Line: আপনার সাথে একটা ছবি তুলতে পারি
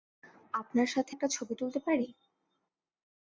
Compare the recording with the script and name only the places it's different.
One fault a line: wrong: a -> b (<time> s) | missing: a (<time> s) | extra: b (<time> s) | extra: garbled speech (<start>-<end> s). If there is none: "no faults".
no faults